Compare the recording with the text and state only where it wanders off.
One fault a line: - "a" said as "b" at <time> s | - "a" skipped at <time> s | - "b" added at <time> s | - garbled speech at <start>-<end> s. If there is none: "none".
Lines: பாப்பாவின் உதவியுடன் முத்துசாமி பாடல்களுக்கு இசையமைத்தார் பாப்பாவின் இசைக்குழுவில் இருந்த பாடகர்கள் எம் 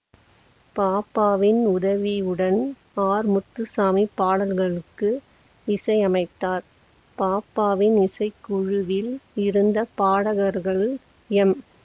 - "ஆர்" added at 3.0 s